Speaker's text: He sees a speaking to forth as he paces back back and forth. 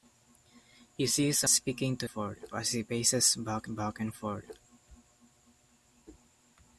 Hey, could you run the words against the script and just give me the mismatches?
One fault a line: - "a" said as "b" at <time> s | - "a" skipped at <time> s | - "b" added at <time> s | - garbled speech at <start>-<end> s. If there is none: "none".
none